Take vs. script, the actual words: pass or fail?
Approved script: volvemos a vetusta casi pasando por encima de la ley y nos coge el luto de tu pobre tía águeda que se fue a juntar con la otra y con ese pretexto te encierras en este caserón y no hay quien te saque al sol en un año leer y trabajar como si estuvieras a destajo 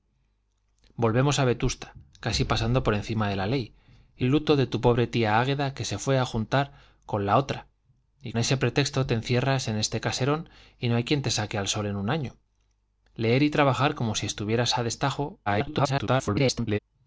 fail